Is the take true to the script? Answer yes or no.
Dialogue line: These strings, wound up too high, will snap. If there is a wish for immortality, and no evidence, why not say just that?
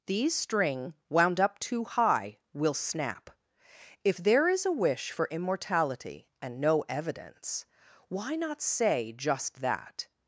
no